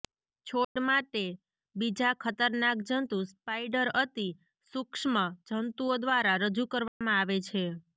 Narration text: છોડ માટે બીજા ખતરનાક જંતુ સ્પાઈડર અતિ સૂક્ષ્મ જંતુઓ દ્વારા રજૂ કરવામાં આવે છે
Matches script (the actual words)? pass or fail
pass